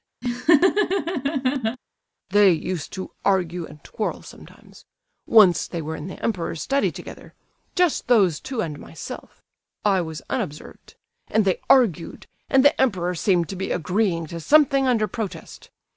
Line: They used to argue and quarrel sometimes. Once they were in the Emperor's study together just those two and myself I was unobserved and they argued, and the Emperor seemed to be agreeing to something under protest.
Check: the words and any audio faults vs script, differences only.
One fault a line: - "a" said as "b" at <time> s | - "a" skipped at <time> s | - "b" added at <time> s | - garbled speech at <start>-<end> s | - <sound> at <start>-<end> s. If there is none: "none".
- laugh at 0.2-1.8 s